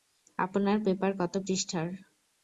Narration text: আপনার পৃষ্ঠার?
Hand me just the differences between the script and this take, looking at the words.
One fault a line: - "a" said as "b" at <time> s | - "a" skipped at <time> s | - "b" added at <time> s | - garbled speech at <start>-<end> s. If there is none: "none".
- "পেপার কত" added at 0.8 s